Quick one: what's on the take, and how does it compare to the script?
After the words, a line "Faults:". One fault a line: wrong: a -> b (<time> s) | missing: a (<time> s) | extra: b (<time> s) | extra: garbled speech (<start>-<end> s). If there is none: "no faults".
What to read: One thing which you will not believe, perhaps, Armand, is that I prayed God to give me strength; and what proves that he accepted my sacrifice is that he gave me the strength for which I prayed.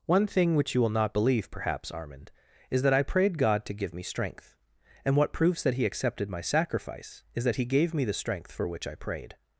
One thing which you will not believe, perhaps, Armand, is that I prayed God to give me strength; and what proves that he accepted my sacrifice is that he gave me the strength for which I prayed.
Faults:
no faults